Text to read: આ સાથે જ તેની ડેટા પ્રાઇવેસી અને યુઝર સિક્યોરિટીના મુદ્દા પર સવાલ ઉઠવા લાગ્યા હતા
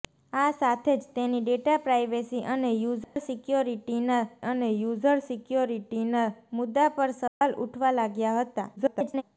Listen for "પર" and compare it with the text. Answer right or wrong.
right